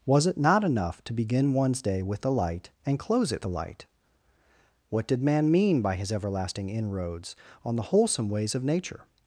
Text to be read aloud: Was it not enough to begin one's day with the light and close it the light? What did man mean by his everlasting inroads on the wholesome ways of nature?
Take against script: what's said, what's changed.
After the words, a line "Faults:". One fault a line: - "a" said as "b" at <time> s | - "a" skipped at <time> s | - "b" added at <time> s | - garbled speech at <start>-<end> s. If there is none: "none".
Was it not enough to begin one's day with the light and close it the light? What did man mean by his everlasting inroads on the wholesome ways of nature?
Faults:
none